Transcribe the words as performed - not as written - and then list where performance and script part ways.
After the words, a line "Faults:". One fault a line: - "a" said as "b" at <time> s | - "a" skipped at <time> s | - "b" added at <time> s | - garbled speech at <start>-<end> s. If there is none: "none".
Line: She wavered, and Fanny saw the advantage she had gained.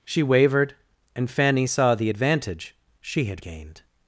She wavered, and Fanny saw the advantage she had gained.
Faults:
none